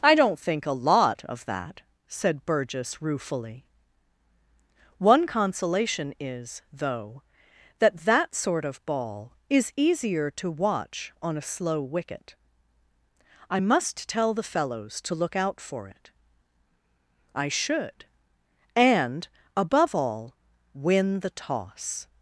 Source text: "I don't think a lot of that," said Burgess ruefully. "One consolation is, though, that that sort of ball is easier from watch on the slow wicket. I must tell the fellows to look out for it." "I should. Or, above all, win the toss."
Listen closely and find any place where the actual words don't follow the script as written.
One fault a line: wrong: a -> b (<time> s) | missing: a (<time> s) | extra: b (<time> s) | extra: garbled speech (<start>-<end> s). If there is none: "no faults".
wrong: from -> to (10.3 s)
wrong: the -> a (11.4 s)
wrong: Or -> And (18.8 s)